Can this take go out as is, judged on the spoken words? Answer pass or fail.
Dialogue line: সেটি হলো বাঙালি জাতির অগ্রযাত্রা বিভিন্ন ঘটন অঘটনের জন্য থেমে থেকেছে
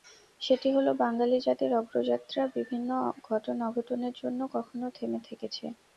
fail